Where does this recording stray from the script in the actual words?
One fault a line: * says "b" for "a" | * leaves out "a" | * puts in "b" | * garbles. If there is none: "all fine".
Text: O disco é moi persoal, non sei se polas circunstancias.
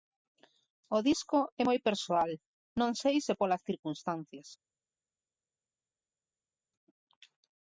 all fine